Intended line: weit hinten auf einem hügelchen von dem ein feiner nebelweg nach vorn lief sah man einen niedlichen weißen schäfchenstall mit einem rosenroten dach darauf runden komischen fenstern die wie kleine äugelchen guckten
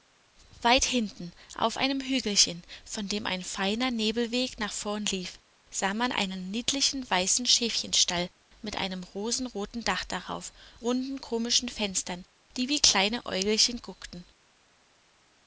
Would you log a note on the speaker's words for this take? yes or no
no